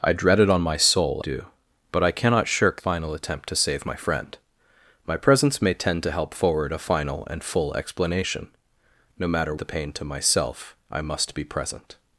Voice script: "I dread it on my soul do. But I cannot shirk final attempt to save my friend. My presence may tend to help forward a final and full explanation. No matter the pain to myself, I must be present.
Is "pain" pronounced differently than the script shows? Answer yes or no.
no